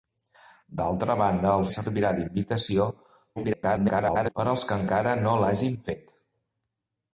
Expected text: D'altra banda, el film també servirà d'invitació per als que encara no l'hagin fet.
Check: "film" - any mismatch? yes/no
yes